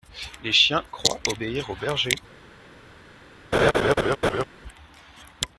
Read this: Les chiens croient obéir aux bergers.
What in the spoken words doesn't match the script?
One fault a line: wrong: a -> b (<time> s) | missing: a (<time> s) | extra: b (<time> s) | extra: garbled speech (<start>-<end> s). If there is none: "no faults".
no faults